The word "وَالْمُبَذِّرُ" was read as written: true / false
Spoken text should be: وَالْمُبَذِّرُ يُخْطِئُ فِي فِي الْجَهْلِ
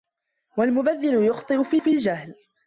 true